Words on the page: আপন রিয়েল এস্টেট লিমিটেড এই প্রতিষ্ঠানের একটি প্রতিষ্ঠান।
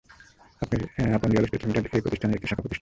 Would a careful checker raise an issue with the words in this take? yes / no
yes